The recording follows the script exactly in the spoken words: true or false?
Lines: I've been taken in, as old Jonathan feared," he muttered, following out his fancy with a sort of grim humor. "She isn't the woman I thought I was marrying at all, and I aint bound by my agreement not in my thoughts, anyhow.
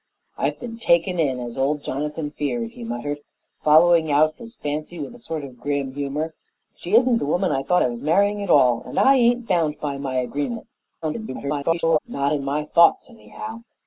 false